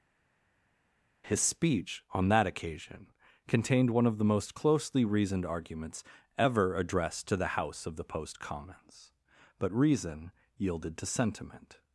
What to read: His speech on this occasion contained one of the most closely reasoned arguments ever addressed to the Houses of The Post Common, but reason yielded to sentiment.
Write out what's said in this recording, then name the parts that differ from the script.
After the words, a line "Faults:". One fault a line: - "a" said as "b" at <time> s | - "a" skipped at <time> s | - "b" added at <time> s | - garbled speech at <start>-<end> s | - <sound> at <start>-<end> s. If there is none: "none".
His speech on that occasion contained one of the most closely reasoned arguments ever addressed to the House of The Post Commons, but reason yielded to sentiment.
Faults:
- "this" said as "that" at 2.3 s
- "Houses" said as "House" at 7.6 s
- "Common" said as "Commons" at 8.4 s